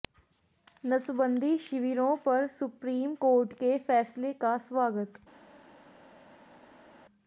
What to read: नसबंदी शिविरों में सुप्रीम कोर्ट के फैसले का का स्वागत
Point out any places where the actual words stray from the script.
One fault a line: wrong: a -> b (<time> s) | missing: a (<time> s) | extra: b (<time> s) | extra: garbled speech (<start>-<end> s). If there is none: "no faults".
wrong: में -> पर (2.2 s)
missing: का (4.6 s)